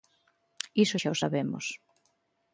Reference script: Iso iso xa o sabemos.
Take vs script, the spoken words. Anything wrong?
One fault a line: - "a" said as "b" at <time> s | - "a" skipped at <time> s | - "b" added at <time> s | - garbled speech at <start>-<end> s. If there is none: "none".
- "iso" skipped at 1.0 s